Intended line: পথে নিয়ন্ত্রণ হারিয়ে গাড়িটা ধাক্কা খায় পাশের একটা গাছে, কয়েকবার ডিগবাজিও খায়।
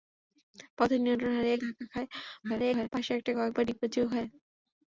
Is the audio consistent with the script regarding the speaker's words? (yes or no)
no